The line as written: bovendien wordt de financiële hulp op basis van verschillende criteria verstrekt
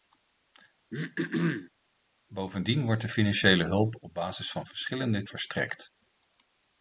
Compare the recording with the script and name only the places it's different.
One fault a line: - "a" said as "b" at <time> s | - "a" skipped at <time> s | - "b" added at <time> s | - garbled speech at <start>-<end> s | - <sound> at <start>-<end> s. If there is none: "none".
- throat clearing at 0.9-1.7 s
- "criteria" skipped at 5.2 s